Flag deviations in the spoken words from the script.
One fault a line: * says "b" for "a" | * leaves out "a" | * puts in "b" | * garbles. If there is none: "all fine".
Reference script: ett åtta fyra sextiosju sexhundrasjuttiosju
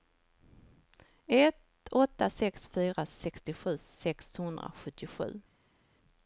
* puts in "sex"